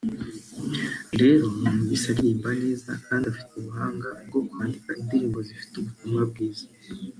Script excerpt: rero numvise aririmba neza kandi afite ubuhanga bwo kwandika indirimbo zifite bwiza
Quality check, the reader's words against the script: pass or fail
fail